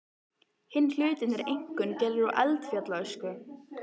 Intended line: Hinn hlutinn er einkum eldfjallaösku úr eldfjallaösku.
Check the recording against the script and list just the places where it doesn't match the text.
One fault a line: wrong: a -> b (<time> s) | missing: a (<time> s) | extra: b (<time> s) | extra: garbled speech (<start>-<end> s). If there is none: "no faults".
wrong: eldfjallaösku -> gerður (2.0 s)